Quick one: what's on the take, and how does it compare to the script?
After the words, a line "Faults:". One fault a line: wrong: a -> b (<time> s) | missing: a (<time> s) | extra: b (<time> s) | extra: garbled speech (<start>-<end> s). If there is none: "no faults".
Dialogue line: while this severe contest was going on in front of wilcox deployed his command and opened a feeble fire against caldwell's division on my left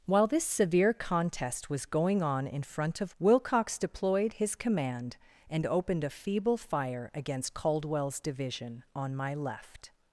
while this severe contest was going on in front of wilcox deployed his command and opened a feeble fire against caldwell's division on my left
Faults:
no faults